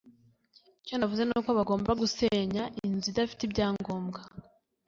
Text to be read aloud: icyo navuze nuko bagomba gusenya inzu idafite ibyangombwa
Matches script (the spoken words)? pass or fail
pass